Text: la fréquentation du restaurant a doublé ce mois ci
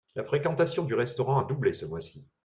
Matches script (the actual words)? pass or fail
pass